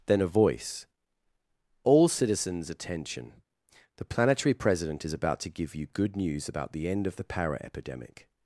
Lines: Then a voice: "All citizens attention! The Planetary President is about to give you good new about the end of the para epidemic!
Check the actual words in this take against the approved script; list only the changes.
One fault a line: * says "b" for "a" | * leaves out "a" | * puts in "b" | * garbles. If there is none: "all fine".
* says "news" for "new"